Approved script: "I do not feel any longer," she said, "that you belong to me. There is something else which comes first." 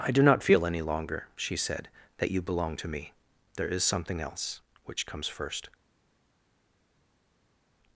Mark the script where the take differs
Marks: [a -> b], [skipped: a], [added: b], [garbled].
"I do not feel any longer," she said, "that you belong to me. There is something else which comes first."